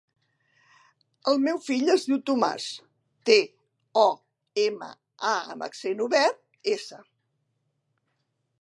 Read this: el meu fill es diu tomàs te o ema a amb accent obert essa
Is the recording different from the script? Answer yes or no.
no